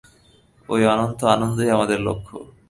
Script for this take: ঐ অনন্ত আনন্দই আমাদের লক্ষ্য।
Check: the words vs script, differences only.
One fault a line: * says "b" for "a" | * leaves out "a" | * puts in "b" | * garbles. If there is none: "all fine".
all fine